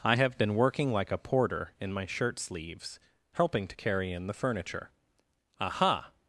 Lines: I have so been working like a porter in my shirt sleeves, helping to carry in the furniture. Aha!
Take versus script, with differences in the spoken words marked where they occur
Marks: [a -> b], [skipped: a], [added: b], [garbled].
I have [skipped: so] been working like a porter in my shirt sleeves, helping to carry in the furniture. Aha!